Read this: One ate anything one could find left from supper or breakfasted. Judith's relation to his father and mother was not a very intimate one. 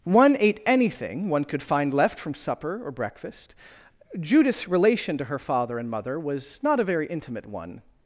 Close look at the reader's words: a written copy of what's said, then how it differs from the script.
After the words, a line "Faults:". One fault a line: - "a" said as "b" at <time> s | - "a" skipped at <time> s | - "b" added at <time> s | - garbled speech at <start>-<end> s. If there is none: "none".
One ate anything one could find left from supper or breakfast. Judith's relation to her father and mother was not a very intimate one.
Faults:
- "breakfasted" said as "breakfast" at 2.9 s
- "his" said as "her" at 5.2 s